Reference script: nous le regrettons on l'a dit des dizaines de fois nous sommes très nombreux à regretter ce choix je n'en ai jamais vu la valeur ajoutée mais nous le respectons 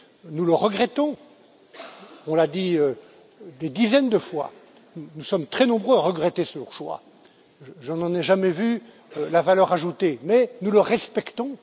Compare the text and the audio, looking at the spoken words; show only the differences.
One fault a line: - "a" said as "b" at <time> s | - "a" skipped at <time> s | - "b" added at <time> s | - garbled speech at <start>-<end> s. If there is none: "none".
none